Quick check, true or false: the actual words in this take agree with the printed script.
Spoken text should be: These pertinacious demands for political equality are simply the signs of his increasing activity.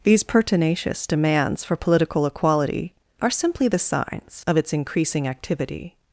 false